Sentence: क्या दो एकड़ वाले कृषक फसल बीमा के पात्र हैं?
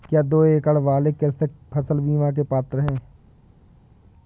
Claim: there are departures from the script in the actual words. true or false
false